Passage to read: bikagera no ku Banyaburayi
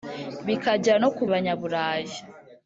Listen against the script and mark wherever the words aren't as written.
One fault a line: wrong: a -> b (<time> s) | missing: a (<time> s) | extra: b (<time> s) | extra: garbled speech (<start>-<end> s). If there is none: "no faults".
no faults